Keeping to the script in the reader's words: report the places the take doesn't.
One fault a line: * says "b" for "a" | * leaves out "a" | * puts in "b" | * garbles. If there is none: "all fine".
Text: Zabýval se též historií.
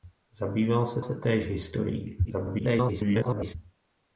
* puts in "se"
* garbles